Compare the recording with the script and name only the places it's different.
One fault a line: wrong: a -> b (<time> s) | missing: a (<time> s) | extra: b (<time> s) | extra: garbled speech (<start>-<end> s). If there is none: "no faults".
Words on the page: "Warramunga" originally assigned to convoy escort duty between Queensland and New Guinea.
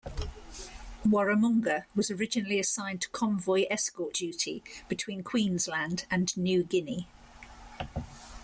extra: was (1.9 s)